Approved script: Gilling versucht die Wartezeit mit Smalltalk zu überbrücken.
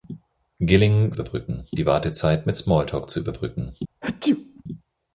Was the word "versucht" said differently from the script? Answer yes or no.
yes